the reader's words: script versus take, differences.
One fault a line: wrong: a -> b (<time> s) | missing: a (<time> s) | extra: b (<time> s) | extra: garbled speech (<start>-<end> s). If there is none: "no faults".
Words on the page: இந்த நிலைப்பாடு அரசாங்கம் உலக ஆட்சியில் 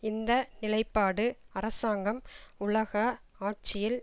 no faults